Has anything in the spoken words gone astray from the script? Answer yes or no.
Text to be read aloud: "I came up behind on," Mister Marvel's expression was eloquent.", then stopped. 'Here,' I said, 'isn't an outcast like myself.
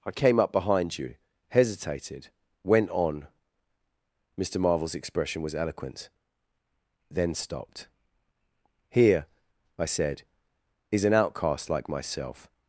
yes